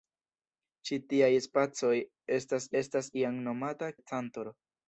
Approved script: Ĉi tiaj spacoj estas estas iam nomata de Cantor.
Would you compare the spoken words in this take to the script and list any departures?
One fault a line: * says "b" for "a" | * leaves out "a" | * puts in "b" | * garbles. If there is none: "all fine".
all fine